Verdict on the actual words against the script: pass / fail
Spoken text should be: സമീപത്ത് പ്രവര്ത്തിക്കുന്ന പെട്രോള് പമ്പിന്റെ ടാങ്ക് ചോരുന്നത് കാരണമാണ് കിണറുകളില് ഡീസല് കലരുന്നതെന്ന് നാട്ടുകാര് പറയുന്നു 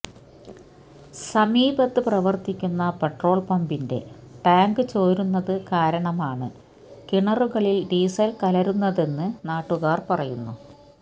pass